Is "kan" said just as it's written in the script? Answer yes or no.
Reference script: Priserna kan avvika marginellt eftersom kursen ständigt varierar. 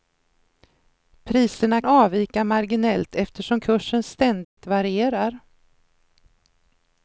no